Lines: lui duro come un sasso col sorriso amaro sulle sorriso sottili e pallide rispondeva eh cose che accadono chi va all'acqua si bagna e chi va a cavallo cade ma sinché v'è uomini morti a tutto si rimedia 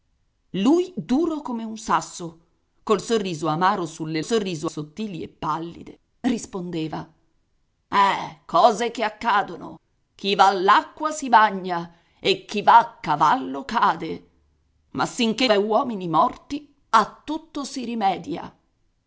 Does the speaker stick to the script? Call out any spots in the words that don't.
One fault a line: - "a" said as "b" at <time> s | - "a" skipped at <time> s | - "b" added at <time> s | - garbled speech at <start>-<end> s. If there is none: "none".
none